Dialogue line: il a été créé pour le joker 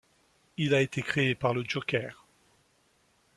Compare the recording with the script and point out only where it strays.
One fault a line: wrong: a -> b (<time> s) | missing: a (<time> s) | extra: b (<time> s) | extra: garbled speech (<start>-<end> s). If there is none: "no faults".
wrong: pour -> par (1.4 s)